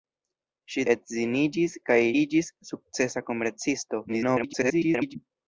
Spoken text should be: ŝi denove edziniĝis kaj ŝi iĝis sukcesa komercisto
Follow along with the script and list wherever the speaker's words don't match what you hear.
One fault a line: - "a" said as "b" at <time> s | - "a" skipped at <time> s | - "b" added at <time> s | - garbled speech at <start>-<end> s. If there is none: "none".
- "denove" skipped at 0.8 s
- "ŝi" skipped at 2.0 s
- garbled speech at 4.1-5.2 s